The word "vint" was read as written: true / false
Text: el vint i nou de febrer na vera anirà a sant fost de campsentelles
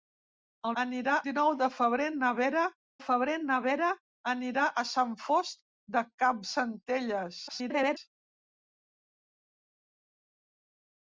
false